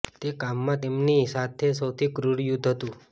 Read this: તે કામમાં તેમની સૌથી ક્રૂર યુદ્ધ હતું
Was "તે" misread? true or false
false